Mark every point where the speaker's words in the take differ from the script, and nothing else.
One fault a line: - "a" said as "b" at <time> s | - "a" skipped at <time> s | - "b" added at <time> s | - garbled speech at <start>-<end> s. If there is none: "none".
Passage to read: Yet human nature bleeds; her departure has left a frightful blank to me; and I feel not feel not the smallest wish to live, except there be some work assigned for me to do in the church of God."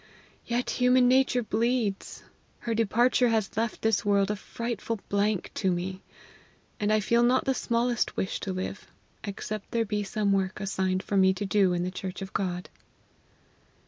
- "this world" added at 3.8 s
- "feel not" skipped at 7.5 s